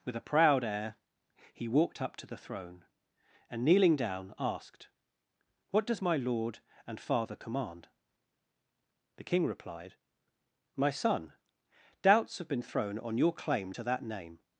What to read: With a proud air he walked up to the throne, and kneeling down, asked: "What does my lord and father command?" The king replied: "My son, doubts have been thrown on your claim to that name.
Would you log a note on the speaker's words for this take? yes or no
no